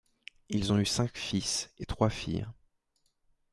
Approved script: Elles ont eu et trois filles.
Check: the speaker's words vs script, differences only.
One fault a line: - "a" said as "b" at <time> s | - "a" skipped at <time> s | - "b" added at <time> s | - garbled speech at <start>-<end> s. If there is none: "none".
- "Elles" said as "Ils" at 0.5 s
- "cinq fils" added at 0.8 s